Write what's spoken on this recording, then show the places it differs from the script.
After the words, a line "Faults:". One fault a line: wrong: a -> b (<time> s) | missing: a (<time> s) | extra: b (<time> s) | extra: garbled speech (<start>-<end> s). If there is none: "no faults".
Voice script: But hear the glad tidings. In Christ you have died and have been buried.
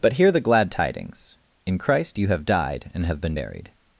But hear the glad tidings. In Christ you have died and have been buried.
Faults:
no faults